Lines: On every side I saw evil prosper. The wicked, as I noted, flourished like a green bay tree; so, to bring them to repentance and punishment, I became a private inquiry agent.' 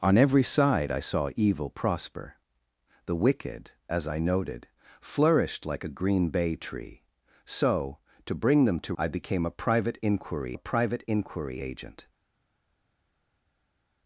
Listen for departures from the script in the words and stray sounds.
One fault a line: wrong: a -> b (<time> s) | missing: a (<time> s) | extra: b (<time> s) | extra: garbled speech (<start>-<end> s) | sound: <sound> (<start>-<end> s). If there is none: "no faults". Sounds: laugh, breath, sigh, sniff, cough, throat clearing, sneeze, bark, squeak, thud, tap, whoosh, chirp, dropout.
wrong: repentance and punishment I became -> I became a private inquiry (9.0 s)